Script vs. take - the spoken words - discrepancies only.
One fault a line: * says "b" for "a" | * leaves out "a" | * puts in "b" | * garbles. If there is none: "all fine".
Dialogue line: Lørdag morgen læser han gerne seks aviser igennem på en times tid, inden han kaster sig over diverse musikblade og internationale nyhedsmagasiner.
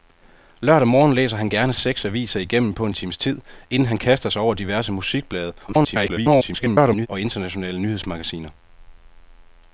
* garbles